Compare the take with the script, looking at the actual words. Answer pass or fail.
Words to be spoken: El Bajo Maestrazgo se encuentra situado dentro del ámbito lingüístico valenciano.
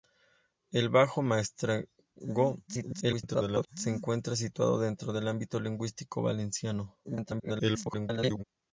fail